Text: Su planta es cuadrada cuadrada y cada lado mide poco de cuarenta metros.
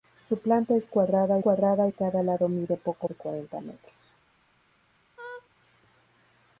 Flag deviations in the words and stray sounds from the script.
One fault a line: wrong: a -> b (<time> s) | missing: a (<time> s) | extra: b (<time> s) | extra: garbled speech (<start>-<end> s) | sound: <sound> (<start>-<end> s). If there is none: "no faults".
sound: laugh (5.2-5.5 s)